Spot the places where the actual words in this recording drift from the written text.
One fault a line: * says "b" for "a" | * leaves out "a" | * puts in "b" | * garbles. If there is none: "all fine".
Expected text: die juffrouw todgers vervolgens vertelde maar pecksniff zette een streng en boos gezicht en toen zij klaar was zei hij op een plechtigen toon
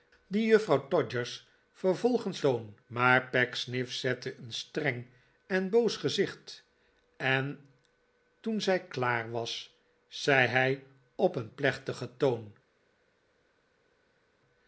* says "toon" for "vertelde"